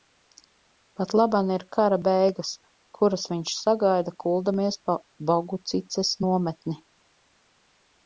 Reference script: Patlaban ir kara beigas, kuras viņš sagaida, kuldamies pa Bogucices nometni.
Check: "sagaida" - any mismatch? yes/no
no